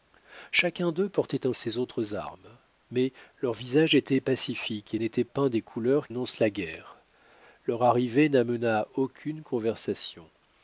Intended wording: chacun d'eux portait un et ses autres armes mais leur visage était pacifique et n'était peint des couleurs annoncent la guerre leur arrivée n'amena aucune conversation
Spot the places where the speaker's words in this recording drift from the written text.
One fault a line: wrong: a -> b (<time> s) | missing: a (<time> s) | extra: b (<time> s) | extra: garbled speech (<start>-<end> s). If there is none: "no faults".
no faults